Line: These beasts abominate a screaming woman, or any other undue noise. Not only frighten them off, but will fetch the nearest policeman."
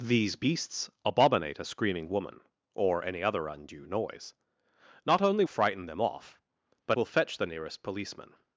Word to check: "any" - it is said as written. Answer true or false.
true